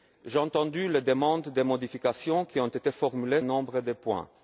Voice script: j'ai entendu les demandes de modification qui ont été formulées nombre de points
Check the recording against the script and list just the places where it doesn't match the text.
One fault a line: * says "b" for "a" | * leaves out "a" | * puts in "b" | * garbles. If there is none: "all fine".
all fine